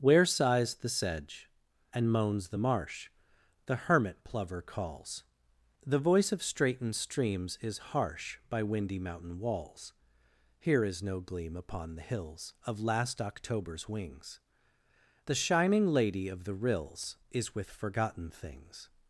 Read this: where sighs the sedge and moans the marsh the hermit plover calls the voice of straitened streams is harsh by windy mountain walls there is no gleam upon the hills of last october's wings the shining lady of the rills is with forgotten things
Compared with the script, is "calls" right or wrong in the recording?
right